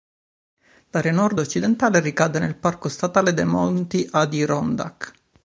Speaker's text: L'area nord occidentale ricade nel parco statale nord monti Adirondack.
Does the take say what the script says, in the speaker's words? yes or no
no